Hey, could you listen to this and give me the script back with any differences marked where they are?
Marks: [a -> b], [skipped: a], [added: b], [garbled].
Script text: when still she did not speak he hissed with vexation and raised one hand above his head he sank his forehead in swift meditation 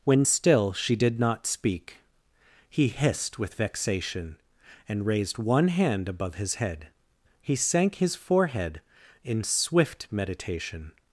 when still she did not speak he hissed with vexation and raised one hand above his head he sank his forehead in swift meditation